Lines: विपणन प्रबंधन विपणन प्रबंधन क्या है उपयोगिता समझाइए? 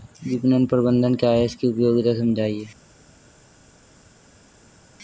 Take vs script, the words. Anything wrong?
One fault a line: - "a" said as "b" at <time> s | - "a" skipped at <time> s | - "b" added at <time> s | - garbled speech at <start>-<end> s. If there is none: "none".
- "विपणन प्रबंधन" skipped at 1.1 s
- "इसकी" added at 1.4 s